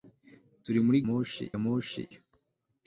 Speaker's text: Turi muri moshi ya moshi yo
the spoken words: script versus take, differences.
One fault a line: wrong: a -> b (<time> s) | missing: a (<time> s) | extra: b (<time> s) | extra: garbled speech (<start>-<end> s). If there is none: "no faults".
no faults